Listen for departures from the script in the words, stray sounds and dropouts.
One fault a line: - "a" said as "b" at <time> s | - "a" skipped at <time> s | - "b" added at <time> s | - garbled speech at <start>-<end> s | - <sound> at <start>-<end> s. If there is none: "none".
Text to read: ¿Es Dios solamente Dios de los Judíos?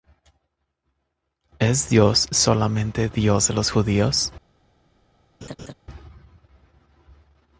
- laugh at 5.4-5.7 s